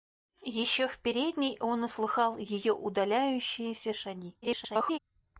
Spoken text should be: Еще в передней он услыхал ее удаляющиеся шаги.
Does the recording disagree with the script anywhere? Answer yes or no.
yes